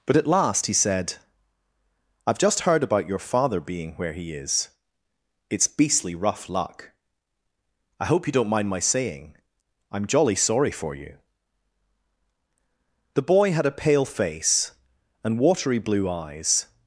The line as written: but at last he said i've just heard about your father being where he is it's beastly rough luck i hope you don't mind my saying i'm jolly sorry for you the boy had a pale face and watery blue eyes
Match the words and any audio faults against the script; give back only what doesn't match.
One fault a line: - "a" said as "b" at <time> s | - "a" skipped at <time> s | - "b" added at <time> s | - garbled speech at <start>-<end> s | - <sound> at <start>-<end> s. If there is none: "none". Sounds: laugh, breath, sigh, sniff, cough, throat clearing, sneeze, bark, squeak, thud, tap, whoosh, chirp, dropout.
none